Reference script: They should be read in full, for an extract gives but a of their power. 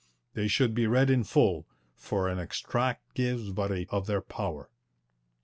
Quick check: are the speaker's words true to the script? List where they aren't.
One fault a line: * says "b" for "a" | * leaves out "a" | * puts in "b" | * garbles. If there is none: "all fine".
all fine